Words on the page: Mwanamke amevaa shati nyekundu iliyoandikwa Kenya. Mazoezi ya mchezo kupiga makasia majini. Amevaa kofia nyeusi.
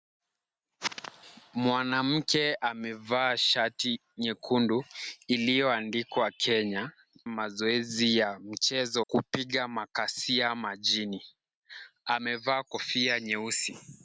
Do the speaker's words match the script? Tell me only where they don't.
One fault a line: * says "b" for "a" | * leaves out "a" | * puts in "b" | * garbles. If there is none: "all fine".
all fine